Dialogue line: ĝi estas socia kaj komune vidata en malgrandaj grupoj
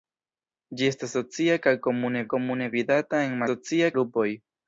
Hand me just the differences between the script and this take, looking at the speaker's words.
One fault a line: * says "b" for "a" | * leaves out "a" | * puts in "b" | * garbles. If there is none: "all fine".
* puts in "komune"
* says "socia" for "malgrandaj"